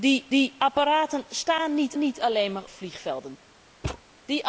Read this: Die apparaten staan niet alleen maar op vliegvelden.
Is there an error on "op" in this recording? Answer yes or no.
yes